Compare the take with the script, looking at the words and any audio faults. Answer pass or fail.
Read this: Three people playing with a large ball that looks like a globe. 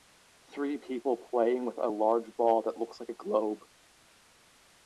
pass